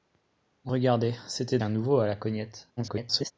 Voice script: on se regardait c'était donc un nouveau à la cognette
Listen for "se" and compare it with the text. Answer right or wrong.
wrong